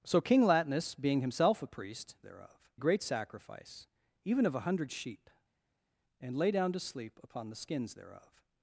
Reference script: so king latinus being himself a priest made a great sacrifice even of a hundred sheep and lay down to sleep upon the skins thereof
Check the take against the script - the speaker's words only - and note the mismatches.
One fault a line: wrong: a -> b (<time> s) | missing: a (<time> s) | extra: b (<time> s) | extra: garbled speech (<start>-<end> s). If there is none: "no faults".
wrong: made -> thereof (2.2 s)